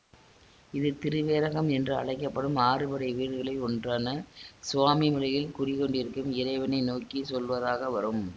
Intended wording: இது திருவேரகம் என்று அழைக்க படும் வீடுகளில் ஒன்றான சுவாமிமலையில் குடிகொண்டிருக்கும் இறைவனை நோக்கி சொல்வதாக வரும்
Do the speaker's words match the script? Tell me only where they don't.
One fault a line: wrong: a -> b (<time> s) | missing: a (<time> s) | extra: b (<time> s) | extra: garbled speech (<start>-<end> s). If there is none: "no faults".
extra: ஆறுபடை (2.6 s)